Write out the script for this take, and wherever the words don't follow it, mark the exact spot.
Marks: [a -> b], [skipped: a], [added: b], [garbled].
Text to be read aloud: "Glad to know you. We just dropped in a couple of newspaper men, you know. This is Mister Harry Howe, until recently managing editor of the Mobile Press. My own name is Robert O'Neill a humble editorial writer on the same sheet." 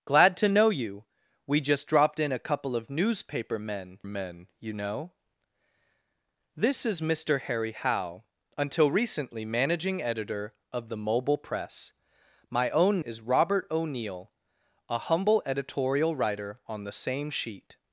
"Glad to know you. We just dropped in a couple of newspaper men, [added: men] you know. This is Mister Harry Howe, until recently managing editor of the Mobile Press. My own [skipped: name] is Robert O'Neill a humble editorial writer on the same sheet."